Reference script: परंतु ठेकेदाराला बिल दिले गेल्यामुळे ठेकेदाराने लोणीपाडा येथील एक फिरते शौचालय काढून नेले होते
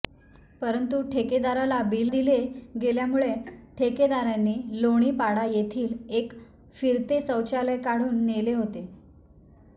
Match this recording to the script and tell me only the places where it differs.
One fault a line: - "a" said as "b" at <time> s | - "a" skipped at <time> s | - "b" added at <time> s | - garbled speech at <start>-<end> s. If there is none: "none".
none